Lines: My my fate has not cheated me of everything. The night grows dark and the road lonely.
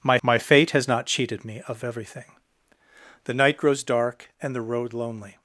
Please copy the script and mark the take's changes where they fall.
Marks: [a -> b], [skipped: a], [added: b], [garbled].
My my fate has not cheated me of everything. The night grows dark and the road lonely.